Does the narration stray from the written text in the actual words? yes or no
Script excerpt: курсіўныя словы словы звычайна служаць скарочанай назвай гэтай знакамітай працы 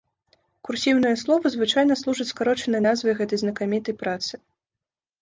yes